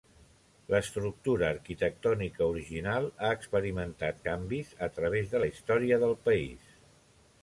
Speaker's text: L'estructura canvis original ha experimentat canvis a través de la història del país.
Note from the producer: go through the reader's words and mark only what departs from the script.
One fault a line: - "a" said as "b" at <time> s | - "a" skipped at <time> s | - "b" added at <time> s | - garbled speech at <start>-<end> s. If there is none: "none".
- "canvis" said as "arquitectònica" at 1.6 s